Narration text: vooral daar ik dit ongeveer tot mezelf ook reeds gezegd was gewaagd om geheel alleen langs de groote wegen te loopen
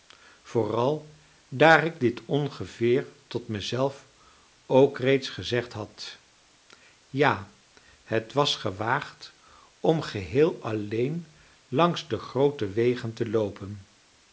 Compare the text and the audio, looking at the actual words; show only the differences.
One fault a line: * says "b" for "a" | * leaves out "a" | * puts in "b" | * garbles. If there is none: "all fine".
* puts in "had ja het"